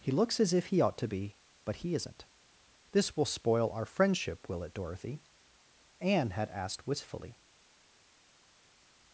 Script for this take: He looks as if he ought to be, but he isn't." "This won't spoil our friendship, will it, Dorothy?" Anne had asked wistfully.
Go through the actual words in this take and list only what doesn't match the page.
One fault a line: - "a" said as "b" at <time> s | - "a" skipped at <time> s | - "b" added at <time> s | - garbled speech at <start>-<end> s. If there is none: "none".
- "won't" said as "will" at 3.2 s